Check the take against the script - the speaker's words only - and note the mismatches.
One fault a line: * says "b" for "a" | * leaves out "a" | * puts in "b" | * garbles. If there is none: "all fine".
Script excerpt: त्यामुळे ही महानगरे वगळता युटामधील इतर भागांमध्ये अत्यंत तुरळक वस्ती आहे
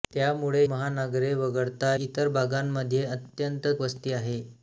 * leaves out "ही"
* leaves out "युटामधील"
* leaves out "तुरळक"